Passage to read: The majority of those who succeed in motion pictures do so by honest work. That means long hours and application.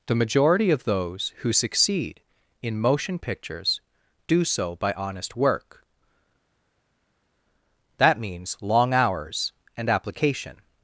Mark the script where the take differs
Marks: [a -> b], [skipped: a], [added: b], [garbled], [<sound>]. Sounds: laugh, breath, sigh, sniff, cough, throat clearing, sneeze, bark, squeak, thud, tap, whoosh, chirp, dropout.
The majority of those who succeed in motion pictures do so by honest work. That means long hours and application.